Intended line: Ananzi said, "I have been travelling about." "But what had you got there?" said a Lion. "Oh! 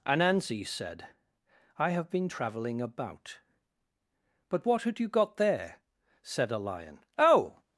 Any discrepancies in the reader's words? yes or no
no